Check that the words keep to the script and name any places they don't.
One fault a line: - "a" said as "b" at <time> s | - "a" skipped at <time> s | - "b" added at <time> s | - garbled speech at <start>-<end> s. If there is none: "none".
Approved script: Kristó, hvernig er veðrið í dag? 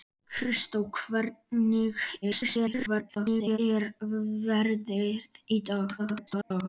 - garbled speech at 2.2-3.6 s
- garbled speech at 6.0-6.7 s